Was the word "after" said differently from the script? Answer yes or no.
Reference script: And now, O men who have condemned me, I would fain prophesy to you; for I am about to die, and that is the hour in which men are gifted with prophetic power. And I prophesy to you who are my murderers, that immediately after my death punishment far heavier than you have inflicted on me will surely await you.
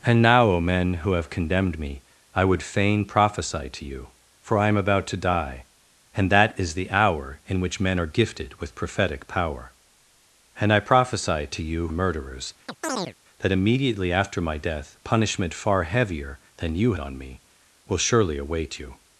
no